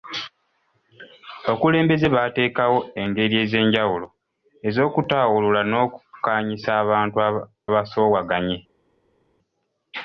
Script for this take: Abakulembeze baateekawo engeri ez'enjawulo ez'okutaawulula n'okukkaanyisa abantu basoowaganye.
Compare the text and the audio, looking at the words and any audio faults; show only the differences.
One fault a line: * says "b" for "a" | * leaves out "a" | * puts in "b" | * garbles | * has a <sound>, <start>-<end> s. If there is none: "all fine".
all fine